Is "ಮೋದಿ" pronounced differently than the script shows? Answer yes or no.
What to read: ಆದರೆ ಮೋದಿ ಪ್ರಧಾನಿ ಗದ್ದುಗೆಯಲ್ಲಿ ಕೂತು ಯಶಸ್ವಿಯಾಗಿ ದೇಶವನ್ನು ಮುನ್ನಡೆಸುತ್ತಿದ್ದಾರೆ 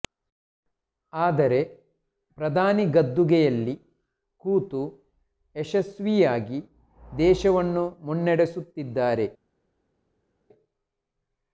yes